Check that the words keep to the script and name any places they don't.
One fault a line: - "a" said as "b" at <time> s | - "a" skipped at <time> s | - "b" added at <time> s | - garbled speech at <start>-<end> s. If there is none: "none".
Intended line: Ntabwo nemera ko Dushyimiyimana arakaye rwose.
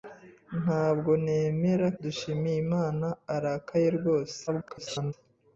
- "ko" skipped at 1.9 s
- garbled speech at 4.5-5.1 s